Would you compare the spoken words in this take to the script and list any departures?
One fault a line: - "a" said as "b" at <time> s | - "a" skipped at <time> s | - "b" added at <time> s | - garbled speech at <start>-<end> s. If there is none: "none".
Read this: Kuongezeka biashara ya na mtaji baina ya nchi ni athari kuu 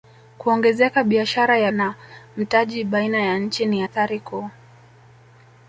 none